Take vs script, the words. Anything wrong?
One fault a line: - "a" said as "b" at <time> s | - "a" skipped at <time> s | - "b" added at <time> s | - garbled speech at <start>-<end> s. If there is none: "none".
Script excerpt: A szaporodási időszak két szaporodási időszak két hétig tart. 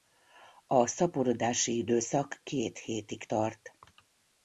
- "szaporodási időszak két" skipped at 2.8 s